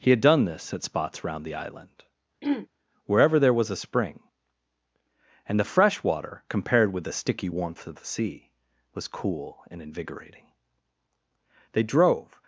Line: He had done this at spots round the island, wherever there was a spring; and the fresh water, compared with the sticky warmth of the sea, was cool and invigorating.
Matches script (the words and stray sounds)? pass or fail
fail